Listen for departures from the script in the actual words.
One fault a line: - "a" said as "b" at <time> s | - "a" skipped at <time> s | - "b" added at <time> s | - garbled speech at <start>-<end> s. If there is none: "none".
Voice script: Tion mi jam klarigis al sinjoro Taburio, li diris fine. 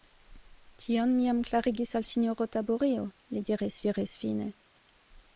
- "diris" added at 3.9 s